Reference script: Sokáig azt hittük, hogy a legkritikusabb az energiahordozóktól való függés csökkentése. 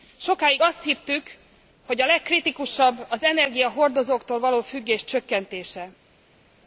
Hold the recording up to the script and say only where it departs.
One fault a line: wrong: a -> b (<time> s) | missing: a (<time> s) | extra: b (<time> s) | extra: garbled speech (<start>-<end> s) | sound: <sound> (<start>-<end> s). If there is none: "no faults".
no faults